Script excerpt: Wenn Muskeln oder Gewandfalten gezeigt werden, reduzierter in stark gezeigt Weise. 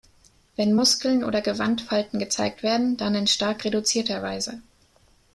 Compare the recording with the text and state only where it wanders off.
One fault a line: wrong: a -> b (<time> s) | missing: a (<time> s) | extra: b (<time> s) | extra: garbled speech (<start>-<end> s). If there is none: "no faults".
wrong: reduzierter -> dann (2.9 s)
wrong: gezeigt -> reduzierter (3.6 s)